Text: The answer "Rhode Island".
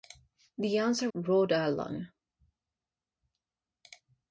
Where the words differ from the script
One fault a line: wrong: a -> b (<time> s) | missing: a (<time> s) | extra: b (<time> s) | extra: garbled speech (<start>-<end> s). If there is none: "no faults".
no faults